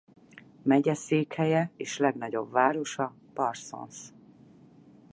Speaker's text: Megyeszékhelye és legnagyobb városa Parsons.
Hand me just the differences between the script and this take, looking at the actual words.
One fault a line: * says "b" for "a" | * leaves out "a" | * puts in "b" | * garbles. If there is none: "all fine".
all fine